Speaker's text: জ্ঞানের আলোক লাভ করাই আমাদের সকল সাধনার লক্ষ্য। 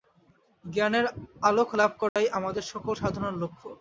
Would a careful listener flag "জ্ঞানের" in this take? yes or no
no